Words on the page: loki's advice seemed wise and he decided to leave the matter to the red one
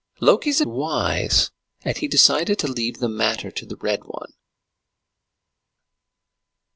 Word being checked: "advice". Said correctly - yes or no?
no